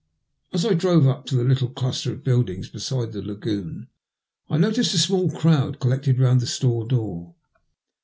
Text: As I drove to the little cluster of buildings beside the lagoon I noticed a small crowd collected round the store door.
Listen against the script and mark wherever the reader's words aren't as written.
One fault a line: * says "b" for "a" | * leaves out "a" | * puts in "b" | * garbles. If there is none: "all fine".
* puts in "up"